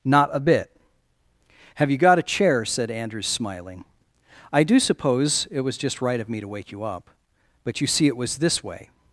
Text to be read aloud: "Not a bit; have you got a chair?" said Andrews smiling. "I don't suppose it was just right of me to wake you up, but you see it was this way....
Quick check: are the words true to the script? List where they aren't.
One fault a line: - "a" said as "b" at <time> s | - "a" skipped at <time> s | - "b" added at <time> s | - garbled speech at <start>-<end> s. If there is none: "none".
- "don't" said as "do" at 4.6 s